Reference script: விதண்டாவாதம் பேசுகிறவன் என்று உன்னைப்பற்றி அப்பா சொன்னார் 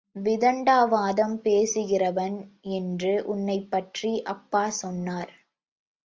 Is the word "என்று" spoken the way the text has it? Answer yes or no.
yes